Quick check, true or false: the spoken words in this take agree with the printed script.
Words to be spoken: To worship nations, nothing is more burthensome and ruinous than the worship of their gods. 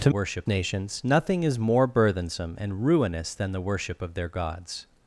true